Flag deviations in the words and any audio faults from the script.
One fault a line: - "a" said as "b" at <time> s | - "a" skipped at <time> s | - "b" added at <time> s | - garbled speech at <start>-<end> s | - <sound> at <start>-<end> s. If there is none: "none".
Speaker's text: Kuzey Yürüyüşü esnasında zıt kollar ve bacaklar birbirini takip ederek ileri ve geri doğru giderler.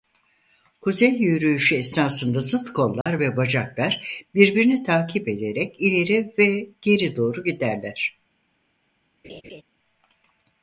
- dropout at 3.0-3.1 s
- laugh at 9.2-9.6 s